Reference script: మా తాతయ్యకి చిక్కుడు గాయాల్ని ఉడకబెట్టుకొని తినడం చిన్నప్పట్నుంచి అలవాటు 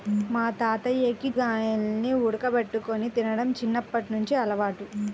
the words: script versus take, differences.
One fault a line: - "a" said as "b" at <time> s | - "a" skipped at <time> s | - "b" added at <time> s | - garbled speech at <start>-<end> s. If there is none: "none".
- "చిక్కుడు" skipped at 1.3 s